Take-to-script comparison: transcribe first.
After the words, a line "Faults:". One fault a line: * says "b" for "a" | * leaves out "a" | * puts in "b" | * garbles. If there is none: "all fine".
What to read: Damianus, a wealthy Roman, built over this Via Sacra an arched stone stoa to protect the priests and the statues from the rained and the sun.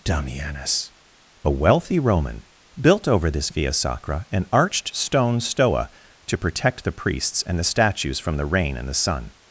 Damianus, a wealthy Roman, built over this Via Sacra an arched stone stoa to protect the priests and the statues from the rain and the sun.
Faults:
* says "rain" for "rained"